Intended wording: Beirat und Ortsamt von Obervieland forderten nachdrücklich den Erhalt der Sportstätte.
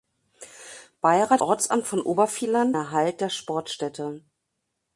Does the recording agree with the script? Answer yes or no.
no